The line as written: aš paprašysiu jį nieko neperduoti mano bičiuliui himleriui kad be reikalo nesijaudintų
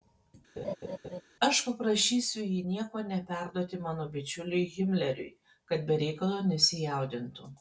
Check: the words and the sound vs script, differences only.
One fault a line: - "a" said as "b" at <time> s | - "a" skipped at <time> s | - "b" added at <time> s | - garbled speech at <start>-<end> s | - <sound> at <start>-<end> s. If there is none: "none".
- laugh at 0.6-1.2 s